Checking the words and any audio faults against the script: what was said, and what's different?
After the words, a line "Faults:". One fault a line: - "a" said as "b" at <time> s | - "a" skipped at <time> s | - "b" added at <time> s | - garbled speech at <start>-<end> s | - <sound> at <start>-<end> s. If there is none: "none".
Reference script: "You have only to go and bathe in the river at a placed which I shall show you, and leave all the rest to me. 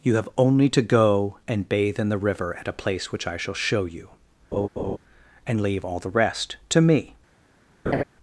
"You have only to go and bathe in the river at a place which I shall show you, and leave all the rest to me.
Faults:
- "placed" said as "place" at 2.7 s
- laugh at 4.5-5.0 s
- laugh at 7.9-8.0 s